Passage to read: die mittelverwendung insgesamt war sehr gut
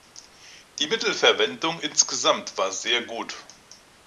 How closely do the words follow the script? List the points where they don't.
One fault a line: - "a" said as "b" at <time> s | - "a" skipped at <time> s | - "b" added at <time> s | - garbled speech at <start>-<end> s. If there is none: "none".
none